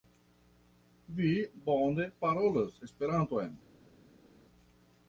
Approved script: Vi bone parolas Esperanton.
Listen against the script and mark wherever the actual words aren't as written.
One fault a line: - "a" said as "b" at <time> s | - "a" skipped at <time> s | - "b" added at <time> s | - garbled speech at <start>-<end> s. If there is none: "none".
none